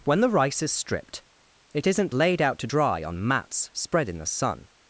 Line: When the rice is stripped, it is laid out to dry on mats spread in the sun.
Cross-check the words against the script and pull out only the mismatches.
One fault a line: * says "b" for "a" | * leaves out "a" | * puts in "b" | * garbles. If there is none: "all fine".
* says "isn't" for "is"